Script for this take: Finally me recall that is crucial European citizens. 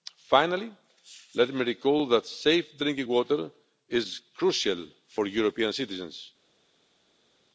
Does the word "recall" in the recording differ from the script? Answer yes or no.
no